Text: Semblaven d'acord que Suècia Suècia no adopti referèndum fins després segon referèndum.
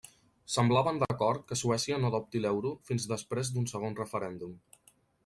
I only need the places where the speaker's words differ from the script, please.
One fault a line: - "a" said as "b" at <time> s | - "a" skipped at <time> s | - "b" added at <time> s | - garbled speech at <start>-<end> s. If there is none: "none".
- "Suècia" skipped at 2.0 s
- "referèndum" said as "l'euro" at 2.5 s
- "d'un" added at 3.5 s